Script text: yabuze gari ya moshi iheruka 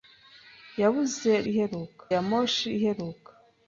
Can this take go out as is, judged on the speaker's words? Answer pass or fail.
fail